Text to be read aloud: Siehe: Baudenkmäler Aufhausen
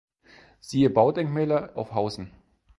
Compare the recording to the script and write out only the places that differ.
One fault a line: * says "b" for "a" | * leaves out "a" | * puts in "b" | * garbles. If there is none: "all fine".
all fine